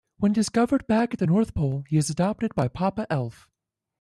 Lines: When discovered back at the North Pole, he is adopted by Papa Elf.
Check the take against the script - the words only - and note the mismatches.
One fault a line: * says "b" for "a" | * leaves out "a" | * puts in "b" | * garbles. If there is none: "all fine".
all fine